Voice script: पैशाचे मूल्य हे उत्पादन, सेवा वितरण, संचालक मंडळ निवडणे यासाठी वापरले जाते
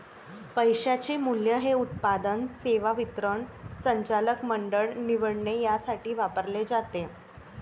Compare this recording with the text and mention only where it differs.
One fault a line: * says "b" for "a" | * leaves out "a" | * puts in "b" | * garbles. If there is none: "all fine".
all fine